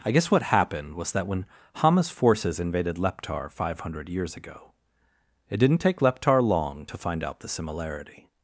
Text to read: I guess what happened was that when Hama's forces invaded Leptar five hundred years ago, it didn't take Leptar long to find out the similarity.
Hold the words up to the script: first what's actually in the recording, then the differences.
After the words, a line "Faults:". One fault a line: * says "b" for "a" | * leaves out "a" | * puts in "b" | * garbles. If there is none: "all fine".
I guess what happened was that when Hama's forces invaded Leptar five hundred years ago, it didn't take Leptar long to find out the similarity.
Faults:
all fine